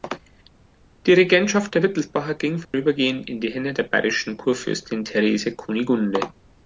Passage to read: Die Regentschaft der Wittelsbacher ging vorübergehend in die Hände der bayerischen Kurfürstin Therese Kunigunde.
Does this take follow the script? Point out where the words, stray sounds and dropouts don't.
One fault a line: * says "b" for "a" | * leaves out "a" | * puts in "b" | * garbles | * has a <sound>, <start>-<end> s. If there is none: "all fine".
* has a dropout, 2.6-2.7 s